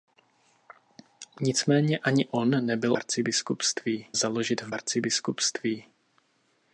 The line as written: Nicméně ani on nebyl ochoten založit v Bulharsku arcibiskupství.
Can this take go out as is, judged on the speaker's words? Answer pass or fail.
fail